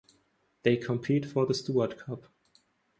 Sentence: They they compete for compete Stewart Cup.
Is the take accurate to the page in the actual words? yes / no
no